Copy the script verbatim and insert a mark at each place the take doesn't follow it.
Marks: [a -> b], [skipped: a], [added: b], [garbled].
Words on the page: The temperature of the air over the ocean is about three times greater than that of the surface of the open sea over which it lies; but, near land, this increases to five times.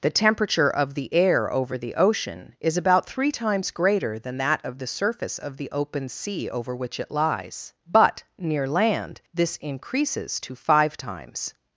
The temperature of the air over the ocean is about three times greater than that of the surface of the open sea over which it lies; but, near land, this increases to five times.